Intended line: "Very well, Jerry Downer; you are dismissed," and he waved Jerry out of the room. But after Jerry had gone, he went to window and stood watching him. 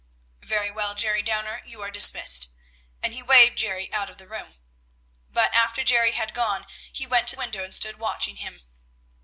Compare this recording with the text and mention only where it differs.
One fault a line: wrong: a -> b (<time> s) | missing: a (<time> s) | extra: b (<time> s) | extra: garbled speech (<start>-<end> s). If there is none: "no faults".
no faults